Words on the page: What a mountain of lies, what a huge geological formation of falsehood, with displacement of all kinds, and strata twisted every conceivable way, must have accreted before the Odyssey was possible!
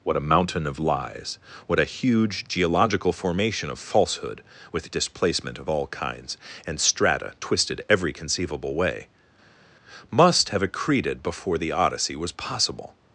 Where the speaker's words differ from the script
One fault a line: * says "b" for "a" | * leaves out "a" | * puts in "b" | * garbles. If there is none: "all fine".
all fine